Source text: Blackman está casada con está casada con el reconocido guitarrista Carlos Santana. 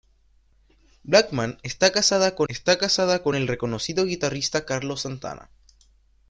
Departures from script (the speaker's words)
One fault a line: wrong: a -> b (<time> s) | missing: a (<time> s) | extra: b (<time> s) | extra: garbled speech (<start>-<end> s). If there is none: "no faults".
no faults